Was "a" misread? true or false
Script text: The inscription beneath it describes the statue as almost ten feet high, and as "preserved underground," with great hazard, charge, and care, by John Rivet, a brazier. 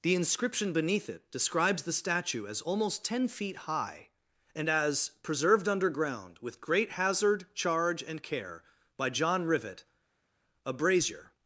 false